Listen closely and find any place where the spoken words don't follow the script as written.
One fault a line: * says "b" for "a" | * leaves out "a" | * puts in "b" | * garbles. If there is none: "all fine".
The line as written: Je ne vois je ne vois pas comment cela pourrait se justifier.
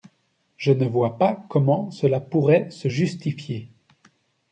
* leaves out "je ne vois"